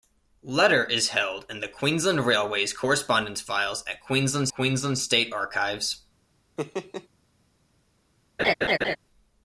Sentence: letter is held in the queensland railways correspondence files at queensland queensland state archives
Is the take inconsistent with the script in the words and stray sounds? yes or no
yes